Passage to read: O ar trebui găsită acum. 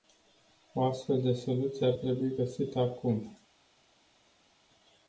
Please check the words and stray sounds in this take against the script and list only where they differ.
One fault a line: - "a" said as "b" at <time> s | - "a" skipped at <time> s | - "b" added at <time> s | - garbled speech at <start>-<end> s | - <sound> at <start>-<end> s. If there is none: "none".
- "astfel de soluție" added at 0.8 s